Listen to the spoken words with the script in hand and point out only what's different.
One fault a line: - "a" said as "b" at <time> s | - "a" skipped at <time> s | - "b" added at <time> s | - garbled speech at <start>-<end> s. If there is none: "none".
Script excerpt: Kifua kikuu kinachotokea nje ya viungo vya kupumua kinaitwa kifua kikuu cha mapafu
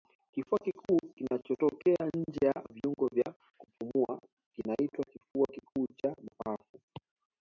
none